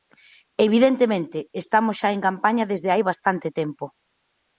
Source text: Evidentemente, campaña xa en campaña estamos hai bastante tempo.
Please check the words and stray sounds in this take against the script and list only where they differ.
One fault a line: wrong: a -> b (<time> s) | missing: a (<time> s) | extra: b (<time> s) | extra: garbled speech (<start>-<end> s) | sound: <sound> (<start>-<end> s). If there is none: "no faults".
wrong: campaña -> estamos (1.6 s)
wrong: estamos -> desde (2.7 s)